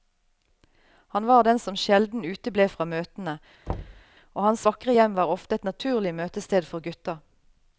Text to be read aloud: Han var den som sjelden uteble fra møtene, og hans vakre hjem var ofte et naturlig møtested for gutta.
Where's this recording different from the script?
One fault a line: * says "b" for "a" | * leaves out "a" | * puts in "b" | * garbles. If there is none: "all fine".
all fine